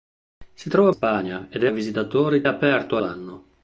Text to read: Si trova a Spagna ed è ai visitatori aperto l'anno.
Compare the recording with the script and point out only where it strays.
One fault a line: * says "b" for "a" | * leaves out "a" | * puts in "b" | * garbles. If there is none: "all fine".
all fine